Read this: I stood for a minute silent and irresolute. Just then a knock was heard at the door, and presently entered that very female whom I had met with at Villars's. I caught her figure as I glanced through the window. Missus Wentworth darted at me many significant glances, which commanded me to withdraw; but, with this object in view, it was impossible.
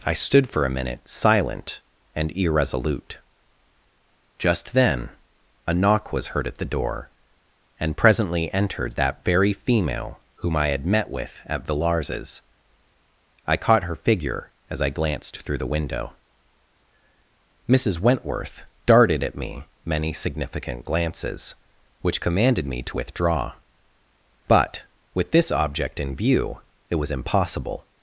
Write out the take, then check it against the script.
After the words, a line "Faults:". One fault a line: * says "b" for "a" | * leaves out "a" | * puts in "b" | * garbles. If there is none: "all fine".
I stood for a minute silent and irresolute. Just then a knock was heard at the door, and presently entered that very female whom I had met with at Villars's. I caught her figure as I glanced through the window. Missus Wentworth darted at me many significant glances, which commanded me to withdraw; but, with this object in view, it was impossible.
Faults:
all fine